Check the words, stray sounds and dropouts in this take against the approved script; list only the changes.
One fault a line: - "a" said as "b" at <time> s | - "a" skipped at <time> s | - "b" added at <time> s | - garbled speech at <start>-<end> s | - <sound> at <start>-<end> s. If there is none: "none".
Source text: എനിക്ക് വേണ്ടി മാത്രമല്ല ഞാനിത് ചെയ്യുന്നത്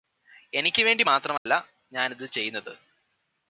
- dropout at 1.4-1.5 s